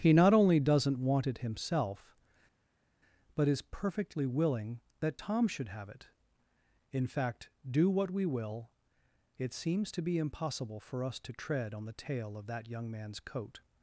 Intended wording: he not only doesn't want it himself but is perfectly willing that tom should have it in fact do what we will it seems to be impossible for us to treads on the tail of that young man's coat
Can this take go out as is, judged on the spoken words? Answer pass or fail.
fail